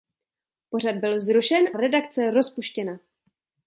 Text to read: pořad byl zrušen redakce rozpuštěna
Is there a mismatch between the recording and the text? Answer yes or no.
no